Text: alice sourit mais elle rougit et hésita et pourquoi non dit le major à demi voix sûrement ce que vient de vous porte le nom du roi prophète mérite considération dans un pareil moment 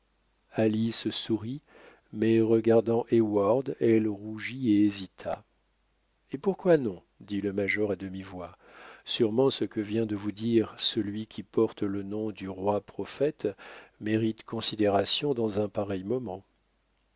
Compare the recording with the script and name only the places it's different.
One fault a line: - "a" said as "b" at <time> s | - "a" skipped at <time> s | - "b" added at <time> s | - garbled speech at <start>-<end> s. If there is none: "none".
- "regardant heyward" added at 2.4 s
- "dire celui qui" added at 10.3 s